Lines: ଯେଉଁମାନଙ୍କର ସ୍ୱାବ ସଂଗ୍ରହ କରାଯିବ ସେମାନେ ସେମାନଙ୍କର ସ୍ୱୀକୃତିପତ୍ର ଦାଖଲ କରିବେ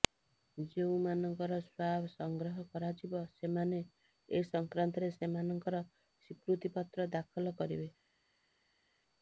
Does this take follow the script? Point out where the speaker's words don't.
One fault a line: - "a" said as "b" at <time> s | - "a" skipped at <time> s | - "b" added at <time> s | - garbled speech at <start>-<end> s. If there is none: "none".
- "ଏ ସଂକ୍ରାନ୍ତରେ" added at 4.3 s